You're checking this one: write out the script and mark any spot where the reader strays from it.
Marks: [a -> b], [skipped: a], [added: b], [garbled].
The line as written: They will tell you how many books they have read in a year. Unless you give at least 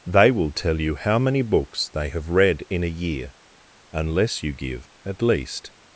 They will tell you how many books they have read in a year. Unless you give at least